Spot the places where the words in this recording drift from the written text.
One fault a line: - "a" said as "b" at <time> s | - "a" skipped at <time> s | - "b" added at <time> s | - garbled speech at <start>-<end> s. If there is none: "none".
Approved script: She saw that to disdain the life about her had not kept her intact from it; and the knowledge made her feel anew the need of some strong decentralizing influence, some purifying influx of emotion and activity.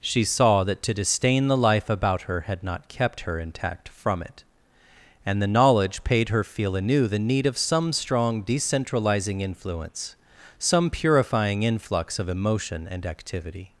- "made" said as "paid" at 6.0 s